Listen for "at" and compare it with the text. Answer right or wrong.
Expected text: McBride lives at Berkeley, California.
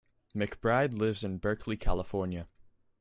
wrong